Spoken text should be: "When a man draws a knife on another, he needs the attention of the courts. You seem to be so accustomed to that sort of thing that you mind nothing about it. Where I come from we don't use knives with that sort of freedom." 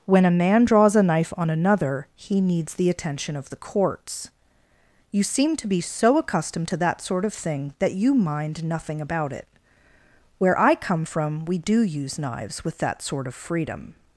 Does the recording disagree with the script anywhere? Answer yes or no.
yes